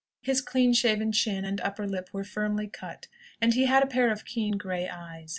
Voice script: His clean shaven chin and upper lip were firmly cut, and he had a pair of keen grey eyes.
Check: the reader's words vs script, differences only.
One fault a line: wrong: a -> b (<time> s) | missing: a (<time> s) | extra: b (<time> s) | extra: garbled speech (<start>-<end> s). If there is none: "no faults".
no faults